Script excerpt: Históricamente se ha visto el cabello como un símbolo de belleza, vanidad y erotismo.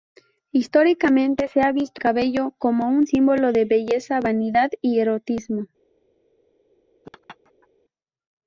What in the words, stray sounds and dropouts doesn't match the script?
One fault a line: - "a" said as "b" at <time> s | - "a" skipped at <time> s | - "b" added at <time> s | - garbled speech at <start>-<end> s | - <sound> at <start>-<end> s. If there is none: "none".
- "el" skipped at 2.0 s
- laugh at 7.0-7.7 s